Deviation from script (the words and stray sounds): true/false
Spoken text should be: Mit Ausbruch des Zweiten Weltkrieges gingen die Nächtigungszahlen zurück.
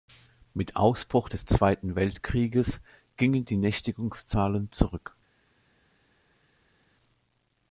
false